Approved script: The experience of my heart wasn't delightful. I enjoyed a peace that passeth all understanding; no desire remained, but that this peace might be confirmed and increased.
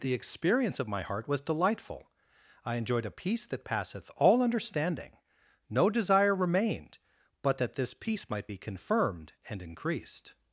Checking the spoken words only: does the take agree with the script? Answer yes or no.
no